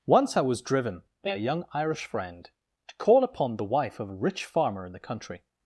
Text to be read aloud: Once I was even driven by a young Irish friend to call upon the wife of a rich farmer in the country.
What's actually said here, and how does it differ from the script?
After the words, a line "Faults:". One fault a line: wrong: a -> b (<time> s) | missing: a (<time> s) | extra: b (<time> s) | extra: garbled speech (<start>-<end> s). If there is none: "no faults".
Once I was driven by a young Irish friend to call upon the wife of a rich farmer in the country.
Faults:
missing: even (0.6 s)